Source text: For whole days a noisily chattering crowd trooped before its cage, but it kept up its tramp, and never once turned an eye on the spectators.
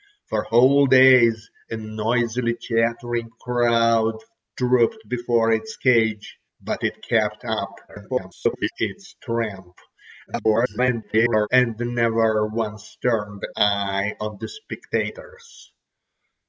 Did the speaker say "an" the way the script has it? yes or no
no